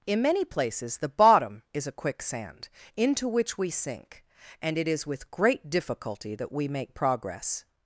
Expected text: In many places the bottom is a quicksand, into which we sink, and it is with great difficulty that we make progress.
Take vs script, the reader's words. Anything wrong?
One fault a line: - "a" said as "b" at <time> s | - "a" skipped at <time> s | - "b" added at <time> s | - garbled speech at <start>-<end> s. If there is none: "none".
none